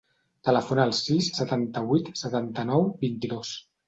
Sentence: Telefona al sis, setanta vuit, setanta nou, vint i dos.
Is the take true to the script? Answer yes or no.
yes